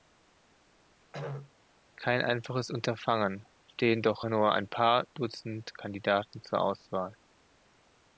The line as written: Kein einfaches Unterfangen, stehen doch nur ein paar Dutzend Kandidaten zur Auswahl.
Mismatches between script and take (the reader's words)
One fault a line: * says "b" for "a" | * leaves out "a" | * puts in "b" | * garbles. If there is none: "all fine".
all fine